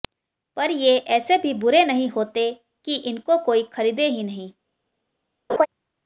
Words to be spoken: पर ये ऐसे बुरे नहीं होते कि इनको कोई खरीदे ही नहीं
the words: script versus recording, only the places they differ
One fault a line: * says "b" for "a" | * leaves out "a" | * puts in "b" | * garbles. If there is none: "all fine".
* puts in "भी"